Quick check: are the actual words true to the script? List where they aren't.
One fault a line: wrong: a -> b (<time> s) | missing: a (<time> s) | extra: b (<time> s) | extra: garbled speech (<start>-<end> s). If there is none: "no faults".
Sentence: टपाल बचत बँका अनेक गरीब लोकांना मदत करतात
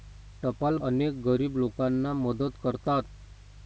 missing: बचत बँका (0.8 s)